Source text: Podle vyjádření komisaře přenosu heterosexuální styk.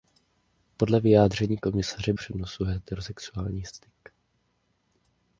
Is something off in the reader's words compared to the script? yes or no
no